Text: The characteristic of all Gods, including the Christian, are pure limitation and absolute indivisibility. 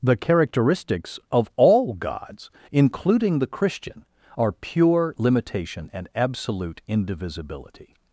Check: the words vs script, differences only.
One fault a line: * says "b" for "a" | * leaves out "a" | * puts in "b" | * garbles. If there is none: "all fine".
* says "characteristics" for "characteristic"